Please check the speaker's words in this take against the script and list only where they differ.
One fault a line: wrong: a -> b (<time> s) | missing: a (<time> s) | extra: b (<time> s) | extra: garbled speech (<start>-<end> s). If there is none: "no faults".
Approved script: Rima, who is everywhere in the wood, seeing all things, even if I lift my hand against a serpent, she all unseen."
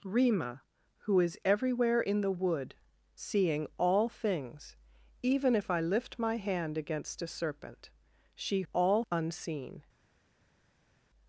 no faults